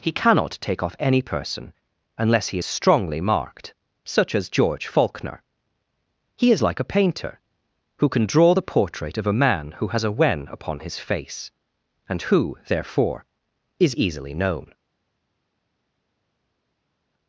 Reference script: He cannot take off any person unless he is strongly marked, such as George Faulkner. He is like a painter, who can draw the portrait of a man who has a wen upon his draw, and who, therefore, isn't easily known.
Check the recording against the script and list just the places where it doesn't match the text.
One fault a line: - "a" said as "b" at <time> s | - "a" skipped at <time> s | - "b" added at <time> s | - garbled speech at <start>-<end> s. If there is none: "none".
- "draw" said as "face" at 11.0 s
- "isn't" said as "is" at 13.8 s